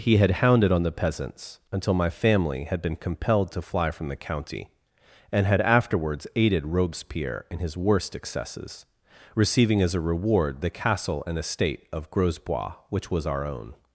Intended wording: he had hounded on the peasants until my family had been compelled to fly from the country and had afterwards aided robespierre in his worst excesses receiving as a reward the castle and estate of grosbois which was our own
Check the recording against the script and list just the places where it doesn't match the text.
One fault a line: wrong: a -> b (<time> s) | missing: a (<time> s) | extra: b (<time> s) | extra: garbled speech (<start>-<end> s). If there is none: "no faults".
wrong: country -> county (4.2 s)